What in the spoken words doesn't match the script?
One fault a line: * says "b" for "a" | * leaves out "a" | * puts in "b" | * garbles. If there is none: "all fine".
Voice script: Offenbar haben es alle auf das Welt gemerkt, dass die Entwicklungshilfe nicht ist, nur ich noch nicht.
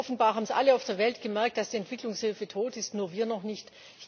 * says "der" for "das"
* says "tot" for "nicht"
* says "wir" for "ich"